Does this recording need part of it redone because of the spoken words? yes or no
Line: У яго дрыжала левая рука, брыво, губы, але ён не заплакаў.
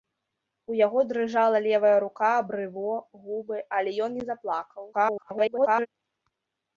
yes